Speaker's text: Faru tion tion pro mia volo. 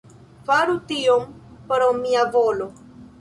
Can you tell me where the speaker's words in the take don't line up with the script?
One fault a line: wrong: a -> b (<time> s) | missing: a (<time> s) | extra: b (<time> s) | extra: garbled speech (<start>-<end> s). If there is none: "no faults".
missing: tion (1.3 s)